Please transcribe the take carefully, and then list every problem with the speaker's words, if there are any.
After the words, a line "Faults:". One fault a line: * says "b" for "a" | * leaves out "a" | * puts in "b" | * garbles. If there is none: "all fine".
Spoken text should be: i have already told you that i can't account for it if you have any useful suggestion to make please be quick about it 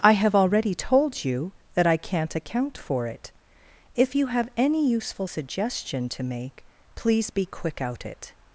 i have already told you that i can't account for it if you have any useful suggestion to make please be quick out it
Faults:
* says "out" for "about"